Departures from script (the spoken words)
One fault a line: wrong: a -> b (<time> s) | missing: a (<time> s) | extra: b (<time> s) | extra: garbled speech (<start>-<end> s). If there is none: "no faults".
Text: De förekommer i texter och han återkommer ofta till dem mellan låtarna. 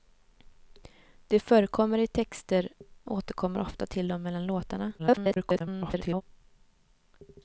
missing: och han (2.7 s)
extra: garbled speech (5.0-6.2 s)